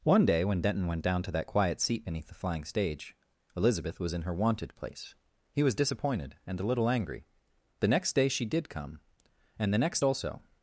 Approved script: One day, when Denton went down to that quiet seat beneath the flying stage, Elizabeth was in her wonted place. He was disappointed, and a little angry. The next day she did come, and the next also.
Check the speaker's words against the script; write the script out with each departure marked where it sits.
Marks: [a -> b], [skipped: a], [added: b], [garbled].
One day, when Denton went down to that quiet seat beneath the flying stage, Elizabeth was in her wonted place. He was disappointed, and a little angry. The next day she did come, and the next also.